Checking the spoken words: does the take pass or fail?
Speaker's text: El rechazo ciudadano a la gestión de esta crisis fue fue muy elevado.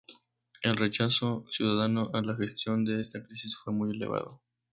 fail